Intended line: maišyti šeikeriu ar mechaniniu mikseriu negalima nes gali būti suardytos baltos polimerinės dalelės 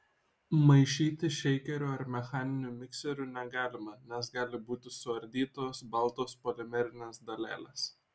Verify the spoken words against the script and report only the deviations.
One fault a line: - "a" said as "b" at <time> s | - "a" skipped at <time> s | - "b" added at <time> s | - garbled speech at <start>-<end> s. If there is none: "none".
none